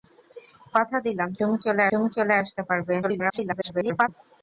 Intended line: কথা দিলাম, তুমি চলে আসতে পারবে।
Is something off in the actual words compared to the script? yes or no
yes